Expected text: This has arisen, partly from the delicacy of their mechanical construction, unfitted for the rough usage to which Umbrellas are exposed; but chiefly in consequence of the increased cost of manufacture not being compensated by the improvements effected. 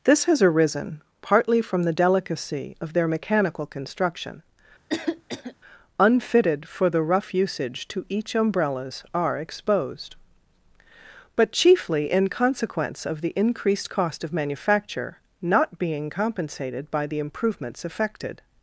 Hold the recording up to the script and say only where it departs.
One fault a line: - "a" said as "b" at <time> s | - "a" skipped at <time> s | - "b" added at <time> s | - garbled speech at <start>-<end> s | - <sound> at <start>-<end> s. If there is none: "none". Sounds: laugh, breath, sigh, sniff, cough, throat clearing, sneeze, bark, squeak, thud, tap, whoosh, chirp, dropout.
- cough at 4.9-5.5 s
- "which" said as "each" at 8.1 s